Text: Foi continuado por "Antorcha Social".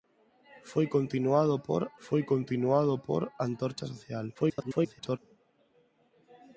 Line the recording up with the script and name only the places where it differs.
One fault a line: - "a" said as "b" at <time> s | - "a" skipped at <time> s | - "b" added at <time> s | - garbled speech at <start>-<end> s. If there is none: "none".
- "foi continuado por" added at 2.0 s
- garbled speech at 4.3-5.2 s